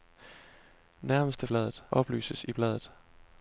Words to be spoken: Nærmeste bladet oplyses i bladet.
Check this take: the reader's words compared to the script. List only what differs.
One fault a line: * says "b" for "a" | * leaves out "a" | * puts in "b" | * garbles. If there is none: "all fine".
all fine